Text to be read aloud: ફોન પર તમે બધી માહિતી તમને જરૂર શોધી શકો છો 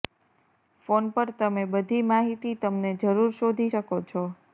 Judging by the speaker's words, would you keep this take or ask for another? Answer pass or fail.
pass